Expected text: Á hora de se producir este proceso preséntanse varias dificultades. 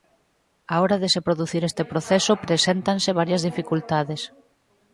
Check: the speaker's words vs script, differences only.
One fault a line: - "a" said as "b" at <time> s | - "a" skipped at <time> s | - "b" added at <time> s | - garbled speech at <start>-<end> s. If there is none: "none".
none